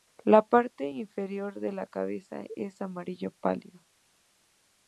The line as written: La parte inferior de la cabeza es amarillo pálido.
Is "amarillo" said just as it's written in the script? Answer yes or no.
yes